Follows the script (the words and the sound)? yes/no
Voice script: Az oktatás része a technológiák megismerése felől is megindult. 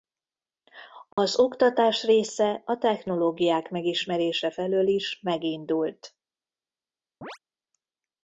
no